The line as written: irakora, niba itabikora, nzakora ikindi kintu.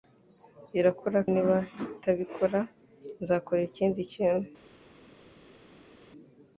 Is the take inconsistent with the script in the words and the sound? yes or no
no